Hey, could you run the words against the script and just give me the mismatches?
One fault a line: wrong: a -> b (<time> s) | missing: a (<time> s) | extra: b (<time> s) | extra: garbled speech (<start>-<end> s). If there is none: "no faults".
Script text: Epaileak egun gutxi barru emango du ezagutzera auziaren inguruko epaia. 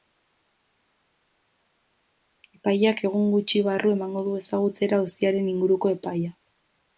no faults